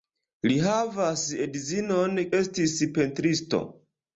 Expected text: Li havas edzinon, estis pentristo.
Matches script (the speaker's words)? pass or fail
pass